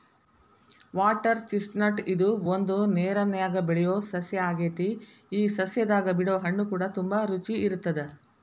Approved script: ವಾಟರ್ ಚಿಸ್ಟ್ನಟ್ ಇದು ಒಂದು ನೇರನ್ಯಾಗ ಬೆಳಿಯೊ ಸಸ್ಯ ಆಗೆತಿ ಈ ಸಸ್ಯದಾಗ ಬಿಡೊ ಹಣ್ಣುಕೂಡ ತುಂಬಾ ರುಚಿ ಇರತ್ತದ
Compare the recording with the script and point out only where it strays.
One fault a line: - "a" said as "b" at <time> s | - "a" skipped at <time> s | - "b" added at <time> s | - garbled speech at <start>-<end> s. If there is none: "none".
none